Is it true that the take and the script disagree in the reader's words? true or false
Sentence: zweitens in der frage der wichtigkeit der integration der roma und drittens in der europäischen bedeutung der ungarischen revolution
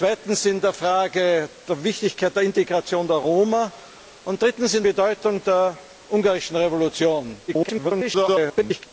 true